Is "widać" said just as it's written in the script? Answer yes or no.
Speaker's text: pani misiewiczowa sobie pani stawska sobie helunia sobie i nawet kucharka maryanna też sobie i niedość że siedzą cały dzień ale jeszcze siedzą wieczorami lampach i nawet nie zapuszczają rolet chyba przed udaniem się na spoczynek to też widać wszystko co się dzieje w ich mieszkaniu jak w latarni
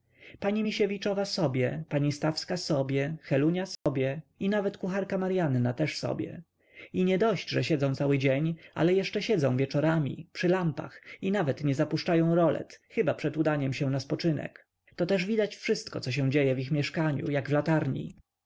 yes